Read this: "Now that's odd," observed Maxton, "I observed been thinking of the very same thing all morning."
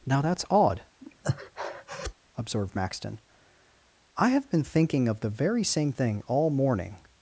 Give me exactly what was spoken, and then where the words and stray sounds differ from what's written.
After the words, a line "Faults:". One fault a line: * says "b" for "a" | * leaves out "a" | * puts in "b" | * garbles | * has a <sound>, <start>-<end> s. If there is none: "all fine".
"Now that's odd," observed Maxton, "I have been thinking of the very same thing all morning."
Faults:
* has a breath, 1.0-2.1 s
* says "have" for "observed"